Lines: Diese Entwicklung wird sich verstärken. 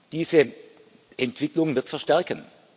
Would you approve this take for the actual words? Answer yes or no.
no